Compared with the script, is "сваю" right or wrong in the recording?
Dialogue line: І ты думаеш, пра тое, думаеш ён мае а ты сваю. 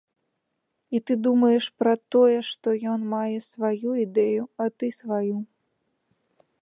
right